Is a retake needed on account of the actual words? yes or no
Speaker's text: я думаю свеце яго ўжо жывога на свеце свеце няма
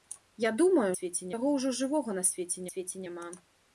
no